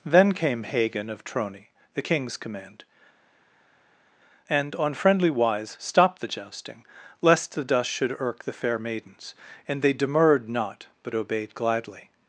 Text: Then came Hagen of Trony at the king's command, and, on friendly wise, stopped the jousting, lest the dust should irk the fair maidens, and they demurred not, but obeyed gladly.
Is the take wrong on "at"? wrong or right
wrong